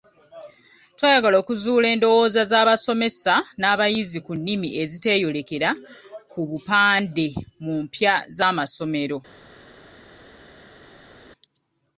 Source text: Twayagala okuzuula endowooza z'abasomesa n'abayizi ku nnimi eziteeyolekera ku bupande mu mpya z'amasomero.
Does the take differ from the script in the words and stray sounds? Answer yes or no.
no